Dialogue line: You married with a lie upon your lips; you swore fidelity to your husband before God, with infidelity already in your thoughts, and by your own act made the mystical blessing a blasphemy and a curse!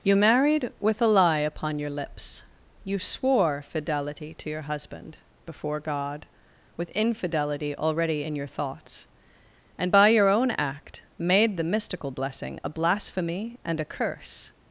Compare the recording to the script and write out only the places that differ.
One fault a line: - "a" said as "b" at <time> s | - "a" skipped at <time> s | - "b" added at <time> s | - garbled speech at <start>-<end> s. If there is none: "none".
none